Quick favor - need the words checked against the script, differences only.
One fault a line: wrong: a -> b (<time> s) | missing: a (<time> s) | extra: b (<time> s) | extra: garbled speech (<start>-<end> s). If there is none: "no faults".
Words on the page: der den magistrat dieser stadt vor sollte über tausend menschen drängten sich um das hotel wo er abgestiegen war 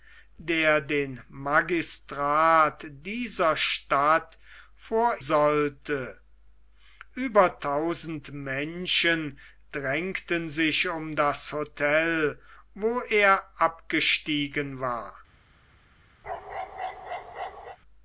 no faults